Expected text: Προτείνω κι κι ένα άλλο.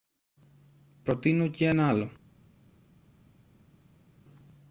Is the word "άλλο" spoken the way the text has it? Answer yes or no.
yes